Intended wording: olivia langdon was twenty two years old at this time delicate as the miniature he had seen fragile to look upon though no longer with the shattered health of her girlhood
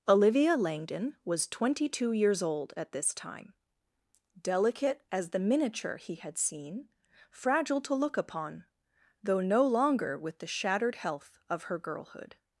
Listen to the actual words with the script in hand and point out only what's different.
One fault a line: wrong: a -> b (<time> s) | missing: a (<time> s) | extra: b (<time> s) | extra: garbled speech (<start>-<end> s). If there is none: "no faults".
no faults